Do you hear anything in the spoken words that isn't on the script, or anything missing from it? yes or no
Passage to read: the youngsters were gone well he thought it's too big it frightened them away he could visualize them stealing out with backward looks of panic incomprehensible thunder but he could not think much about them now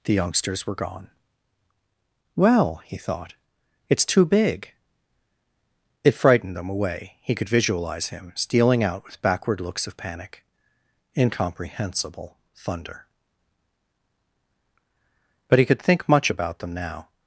yes